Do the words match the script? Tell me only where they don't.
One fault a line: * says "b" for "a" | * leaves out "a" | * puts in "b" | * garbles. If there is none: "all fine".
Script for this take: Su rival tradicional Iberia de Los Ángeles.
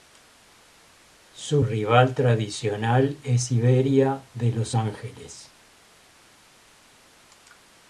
* puts in "es"